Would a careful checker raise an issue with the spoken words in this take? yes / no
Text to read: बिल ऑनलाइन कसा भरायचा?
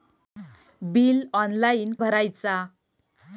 yes